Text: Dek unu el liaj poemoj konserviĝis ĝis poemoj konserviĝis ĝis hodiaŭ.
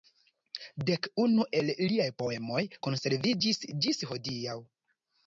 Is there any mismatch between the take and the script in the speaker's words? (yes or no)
yes